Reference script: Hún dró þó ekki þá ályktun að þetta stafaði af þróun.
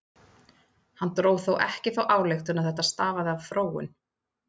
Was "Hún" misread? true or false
true